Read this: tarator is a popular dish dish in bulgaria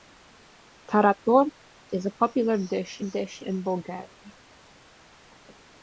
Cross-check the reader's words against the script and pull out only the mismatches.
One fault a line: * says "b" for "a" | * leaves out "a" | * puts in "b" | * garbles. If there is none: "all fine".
all fine